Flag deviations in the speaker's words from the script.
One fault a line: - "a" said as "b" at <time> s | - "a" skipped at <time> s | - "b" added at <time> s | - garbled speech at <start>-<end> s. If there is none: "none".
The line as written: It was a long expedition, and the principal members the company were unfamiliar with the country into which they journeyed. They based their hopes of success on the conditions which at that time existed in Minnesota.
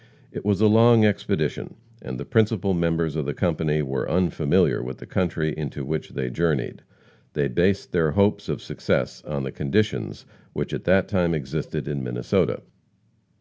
- "of" added at 3.1 s